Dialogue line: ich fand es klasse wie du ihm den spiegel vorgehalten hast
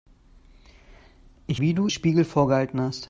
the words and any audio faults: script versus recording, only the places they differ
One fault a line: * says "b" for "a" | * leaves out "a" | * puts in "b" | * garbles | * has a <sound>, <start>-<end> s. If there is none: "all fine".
* leaves out "fand es klasse"
* leaves out "ihm den"